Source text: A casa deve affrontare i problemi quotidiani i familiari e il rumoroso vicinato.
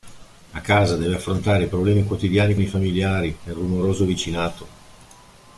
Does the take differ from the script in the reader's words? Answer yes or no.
no